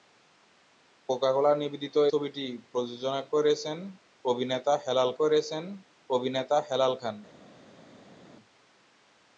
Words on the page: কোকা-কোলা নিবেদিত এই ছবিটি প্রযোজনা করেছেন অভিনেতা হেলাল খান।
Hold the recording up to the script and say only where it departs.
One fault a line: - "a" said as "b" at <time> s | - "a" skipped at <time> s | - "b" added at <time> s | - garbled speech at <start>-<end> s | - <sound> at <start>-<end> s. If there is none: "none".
- "এই" skipped at 1.9 s
- "করেছেন অভিনেতা হেলাল" added at 5.2 s